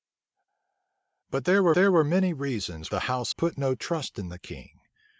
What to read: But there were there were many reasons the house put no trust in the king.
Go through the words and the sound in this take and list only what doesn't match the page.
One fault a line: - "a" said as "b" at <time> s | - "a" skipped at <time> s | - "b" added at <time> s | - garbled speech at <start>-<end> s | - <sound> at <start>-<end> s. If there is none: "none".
none